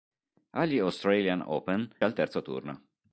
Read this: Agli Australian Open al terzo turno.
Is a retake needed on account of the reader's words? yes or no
no